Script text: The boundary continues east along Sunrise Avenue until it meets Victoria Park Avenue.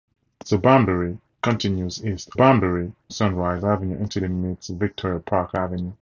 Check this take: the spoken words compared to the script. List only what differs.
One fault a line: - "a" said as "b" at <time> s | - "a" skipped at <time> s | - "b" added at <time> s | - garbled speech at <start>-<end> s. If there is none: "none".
- "along" said as "boundary" at 2.3 s